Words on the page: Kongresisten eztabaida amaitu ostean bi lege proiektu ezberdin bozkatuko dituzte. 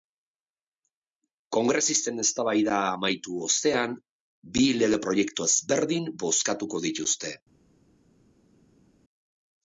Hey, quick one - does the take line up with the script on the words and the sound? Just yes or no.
yes